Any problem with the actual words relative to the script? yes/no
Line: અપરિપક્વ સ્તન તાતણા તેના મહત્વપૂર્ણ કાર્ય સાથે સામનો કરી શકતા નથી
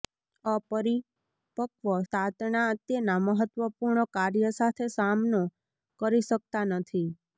yes